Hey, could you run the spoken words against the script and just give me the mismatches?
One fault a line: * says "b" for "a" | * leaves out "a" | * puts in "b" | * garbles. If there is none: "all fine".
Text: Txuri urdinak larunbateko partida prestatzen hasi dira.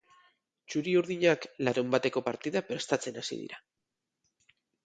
all fine